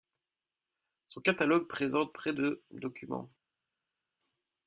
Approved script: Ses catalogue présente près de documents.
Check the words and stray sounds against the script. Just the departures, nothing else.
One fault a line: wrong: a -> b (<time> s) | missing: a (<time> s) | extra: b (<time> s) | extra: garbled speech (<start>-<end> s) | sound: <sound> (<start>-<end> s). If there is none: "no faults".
wrong: Ses -> Son (1.1 s)